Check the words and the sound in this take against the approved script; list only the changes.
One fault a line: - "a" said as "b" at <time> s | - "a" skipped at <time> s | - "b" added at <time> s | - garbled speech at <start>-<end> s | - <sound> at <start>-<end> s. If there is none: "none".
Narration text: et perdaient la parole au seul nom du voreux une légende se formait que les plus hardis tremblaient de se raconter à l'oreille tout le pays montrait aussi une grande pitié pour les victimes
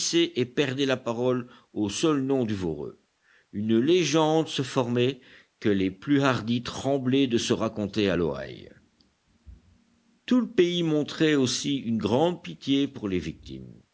none